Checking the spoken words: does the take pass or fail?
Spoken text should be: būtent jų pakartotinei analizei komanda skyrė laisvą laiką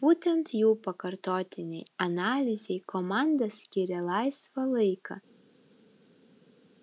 pass